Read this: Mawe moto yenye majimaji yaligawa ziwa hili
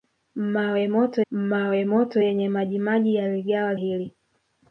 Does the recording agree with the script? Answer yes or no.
no